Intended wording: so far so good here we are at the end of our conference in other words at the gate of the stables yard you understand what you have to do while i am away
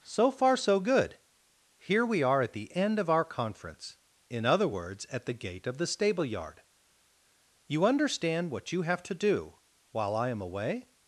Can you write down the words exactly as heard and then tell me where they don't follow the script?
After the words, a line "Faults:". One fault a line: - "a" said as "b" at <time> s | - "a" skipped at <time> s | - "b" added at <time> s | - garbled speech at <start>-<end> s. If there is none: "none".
so far so good here we are at the end of our conference in other words at the gate of the stable yard you understand what you have to do while i am away
Faults:
- "stables" said as "stable" at 5.9 s